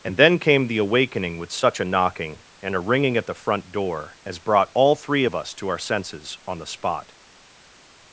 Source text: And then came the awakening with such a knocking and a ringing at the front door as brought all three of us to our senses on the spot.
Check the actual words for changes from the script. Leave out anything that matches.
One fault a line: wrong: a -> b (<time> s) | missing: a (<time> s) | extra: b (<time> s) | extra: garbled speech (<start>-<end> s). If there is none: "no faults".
no faults